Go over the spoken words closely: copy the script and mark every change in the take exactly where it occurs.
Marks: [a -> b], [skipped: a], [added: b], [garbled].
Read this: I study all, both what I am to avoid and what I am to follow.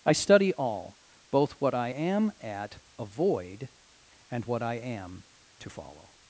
I study all, both what I am [to -> at] avoid and what I am to follow.